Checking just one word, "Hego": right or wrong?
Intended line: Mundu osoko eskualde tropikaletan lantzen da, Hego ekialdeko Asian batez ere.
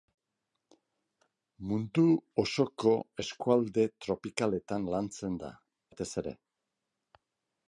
wrong